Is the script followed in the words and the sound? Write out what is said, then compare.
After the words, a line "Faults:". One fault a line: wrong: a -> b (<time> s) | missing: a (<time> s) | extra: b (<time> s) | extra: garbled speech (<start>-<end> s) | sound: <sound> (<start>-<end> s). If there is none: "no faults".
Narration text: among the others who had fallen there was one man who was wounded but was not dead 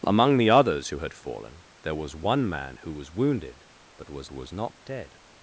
among the others who had fallen there was one man who was wounded but was was not dead
Faults:
extra: was (4.3 s)